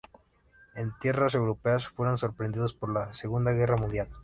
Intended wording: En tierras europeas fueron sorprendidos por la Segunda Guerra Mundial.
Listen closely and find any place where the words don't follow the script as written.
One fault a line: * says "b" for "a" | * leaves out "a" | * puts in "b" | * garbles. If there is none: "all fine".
all fine